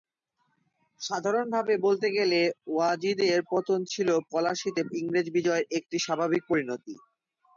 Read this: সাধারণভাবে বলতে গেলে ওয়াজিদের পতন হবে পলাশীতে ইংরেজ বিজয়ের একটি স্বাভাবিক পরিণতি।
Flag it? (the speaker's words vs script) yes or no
yes